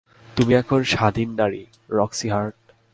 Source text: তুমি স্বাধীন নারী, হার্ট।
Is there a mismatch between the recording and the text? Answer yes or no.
yes